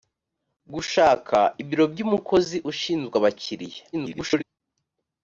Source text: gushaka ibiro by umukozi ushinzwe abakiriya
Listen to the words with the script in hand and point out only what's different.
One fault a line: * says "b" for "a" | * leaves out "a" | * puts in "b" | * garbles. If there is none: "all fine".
* garbles